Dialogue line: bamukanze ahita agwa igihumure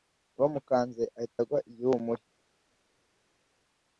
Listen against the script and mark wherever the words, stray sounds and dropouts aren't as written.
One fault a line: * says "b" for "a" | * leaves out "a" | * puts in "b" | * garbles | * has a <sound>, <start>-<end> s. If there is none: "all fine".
all fine